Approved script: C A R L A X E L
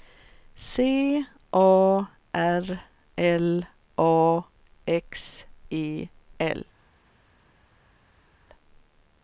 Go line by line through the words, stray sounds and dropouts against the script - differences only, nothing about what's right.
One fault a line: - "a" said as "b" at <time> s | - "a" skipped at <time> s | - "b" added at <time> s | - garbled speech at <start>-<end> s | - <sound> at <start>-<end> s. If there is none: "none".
none